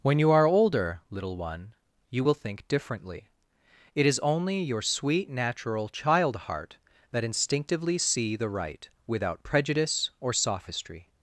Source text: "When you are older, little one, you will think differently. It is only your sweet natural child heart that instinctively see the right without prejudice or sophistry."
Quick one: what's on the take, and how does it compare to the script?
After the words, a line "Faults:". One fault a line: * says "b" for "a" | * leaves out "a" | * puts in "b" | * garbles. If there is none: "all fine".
"When you are older, little one, you will think differently. It is only your sweet natural child heart that instinctively see the right without prejudice or sophistry."
Faults:
all fine